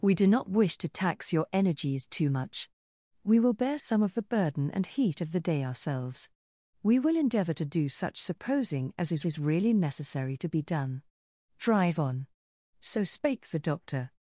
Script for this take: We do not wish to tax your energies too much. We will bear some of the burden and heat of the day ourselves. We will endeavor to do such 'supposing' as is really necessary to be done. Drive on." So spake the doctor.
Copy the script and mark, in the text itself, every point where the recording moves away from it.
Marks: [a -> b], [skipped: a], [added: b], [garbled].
We do not wish to tax your energies too much. We will bear some of the burden and heat of the day ourselves. We will endeavor to do such 'supposing' as is [added: is] really necessary to be done. Drive on." So spake the doctor.